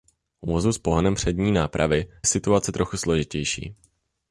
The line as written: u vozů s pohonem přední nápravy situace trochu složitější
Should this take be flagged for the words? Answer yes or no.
no